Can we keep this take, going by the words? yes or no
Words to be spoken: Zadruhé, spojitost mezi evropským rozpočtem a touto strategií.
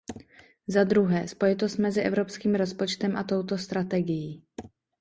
yes